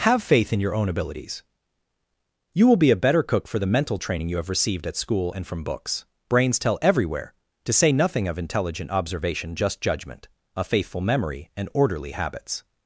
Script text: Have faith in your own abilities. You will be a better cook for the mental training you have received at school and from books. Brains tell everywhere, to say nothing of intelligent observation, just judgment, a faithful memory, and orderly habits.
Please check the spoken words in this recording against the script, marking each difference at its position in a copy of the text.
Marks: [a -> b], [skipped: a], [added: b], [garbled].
Have faith in your own abilities. You will be a better cook for the mental training you have received at school and from books. Brains tell everywhere, to say nothing of intelligent observation, just judgment, a faithful memory, and orderly habits.